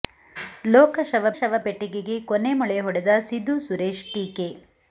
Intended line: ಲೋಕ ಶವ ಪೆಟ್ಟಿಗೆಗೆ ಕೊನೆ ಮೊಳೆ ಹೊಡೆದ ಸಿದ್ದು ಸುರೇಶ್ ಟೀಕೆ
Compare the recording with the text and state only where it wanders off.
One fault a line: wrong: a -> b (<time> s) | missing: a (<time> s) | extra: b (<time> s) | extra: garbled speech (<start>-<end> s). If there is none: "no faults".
extra: ಶವ (1.3 s)